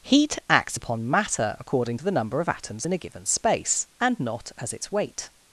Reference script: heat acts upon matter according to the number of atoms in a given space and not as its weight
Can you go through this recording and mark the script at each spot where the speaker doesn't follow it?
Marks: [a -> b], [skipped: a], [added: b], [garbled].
heat acts upon matter according to the number of atoms in a given space and not as its weight